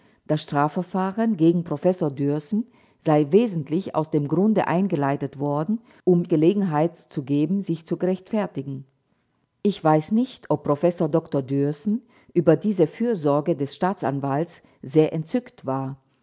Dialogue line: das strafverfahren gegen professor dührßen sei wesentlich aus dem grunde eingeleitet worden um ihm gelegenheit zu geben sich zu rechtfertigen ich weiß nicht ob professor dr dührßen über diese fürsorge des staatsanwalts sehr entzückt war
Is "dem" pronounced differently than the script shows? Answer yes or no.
no